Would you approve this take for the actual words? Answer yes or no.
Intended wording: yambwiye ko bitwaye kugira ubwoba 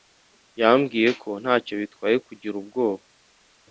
no